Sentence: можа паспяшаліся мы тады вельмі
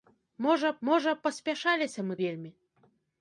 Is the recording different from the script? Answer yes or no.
yes